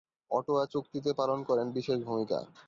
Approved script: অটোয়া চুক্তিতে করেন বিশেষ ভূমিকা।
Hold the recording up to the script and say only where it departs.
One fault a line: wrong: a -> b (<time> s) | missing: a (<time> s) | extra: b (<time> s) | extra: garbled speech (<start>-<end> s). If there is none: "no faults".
extra: পালন (1.1 s)